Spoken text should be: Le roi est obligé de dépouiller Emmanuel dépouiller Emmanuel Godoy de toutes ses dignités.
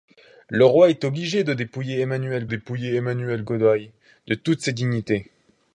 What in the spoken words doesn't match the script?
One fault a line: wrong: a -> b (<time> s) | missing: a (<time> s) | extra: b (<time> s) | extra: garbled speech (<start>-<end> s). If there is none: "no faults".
no faults